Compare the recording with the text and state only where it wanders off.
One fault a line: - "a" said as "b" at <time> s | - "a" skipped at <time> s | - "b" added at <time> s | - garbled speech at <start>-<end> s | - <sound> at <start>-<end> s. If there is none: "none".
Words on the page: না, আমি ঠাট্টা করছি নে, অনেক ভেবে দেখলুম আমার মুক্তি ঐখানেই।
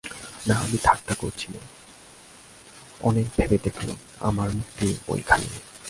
none